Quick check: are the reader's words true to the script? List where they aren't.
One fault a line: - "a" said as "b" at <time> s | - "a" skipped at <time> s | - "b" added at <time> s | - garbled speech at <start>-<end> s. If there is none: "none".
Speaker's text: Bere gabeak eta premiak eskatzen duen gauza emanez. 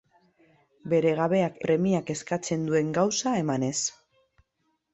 - "eta" skipped at 1.6 s